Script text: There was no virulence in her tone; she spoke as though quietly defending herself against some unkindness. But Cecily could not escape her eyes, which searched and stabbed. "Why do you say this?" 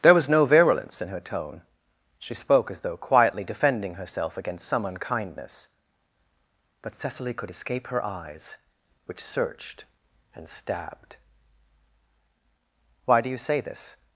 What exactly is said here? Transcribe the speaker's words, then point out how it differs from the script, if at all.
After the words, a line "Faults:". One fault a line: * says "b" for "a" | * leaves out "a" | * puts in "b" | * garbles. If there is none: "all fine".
There was no virulence in her tone; she spoke as though quietly defending herself against some unkindness. But Cecily could escape her eyes, which searched and stabbed. "Why do you say this?"
Faults:
* leaves out "not"